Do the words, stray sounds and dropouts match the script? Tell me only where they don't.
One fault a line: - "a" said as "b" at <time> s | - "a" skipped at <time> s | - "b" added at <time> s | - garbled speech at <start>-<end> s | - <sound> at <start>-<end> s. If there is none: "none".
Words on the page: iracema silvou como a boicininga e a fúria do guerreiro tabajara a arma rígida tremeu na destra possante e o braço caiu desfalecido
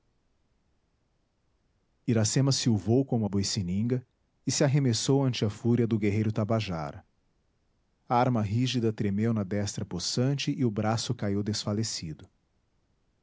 - "se arremessou ante" added at 4.5 s